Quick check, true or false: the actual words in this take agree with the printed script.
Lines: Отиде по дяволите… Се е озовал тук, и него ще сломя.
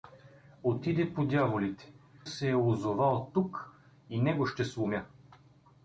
true